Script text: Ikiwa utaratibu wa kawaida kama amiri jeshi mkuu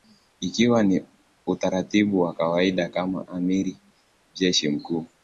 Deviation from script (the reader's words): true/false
true